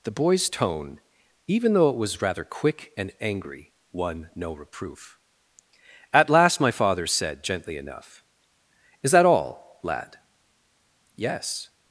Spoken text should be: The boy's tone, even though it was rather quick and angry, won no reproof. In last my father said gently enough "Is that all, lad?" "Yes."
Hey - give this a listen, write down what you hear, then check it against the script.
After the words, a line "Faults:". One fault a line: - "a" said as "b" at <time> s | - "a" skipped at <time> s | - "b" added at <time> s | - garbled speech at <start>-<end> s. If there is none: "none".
The boy's tone, even though it was rather quick and angry, won no reproof. At last my father said gently enough "Is that all, lad?" "Yes."
Faults:
- "In" said as "At" at 6.1 s